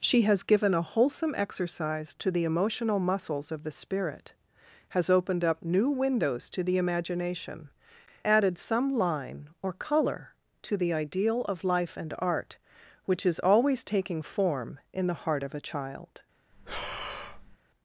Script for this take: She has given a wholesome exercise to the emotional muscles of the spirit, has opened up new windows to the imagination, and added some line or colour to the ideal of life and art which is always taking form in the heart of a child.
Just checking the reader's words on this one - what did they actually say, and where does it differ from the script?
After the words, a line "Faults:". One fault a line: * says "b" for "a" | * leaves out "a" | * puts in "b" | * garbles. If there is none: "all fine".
She has given a wholesome exercise to the emotional muscles of the spirit, has opened up new windows to the imagination, added some line or colour to the ideal of life and art which is always taking form in the heart of a child.
Faults:
* leaves out "and"